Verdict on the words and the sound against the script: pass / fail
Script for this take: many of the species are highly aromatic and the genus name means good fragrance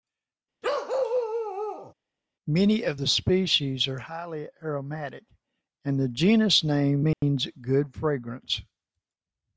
fail